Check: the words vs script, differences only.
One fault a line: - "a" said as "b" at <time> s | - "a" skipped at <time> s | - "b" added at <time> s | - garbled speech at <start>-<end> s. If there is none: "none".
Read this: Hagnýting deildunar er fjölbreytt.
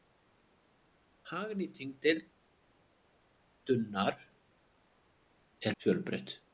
none